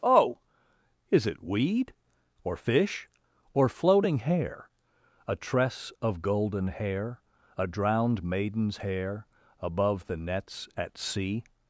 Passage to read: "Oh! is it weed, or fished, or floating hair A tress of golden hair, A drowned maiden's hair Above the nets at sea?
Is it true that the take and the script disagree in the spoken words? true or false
true